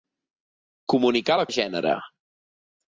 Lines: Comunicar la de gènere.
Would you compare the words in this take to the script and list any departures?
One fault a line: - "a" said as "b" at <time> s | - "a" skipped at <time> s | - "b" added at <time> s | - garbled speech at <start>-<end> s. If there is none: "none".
none